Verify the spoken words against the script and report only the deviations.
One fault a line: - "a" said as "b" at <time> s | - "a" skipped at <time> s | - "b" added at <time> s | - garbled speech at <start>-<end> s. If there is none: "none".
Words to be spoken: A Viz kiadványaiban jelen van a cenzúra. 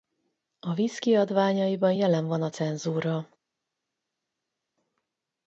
none